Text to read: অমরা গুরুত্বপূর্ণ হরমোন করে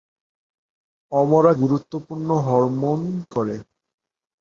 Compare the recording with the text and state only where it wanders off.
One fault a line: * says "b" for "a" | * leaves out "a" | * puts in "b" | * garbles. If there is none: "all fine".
all fine